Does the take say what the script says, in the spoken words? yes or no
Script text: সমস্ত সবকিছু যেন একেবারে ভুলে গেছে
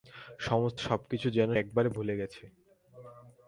yes